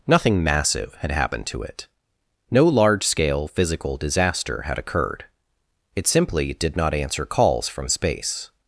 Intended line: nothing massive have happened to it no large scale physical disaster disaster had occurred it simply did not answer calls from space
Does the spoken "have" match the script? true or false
false